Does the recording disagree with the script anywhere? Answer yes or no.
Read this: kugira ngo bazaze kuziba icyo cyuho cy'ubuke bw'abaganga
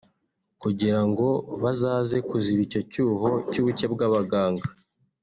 no